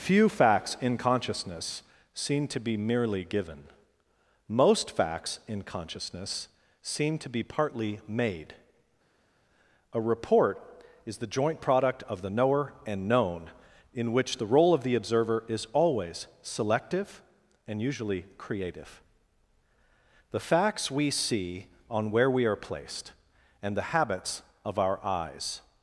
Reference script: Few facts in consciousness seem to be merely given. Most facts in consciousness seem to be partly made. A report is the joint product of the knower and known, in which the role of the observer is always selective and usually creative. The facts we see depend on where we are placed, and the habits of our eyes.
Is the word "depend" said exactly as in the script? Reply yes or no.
no